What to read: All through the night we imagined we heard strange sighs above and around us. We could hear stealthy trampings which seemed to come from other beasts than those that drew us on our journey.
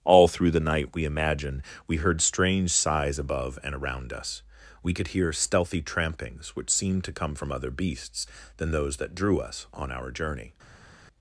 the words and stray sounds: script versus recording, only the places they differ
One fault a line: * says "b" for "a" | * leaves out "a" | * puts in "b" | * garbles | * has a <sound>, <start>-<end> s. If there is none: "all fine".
all fine